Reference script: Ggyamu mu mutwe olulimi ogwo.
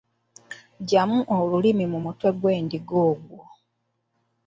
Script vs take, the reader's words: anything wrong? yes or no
yes